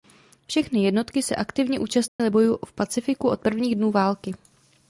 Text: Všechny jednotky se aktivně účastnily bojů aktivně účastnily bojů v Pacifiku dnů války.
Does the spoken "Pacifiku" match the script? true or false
false